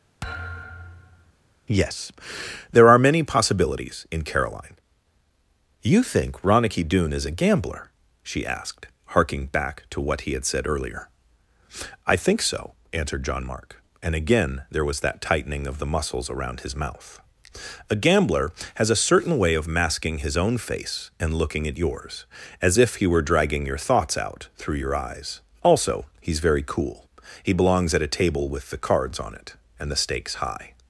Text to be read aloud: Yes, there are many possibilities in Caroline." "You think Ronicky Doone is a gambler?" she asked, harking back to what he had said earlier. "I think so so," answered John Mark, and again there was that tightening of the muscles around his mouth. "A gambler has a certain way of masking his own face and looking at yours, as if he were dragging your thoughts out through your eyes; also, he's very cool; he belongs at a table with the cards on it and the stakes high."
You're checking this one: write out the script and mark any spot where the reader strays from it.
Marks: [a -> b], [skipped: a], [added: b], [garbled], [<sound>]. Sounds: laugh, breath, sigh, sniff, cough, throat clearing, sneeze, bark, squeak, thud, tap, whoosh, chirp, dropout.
[thud] Yes, there are many possibilities in Caroline." "You think Ronicky Doone is a gambler?" she asked, harking back to what he had said earlier. "I think so [skipped: so,"] answered John Mark, and again there was that tightening of the muscles around his mouth. "A gambler has a certain way of masking his own face and looking at yours, as if he were dragging your thoughts out through your eyes; also, he's very cool; he belongs at a table with the cards on it and the stakes high."